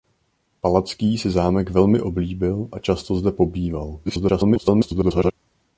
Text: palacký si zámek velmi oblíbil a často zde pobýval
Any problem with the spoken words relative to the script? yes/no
yes